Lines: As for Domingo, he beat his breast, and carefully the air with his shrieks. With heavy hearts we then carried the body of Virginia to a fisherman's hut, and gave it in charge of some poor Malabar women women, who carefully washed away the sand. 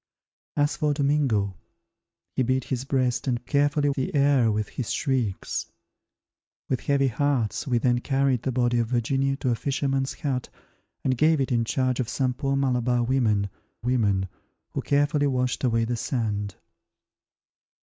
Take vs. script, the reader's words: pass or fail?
pass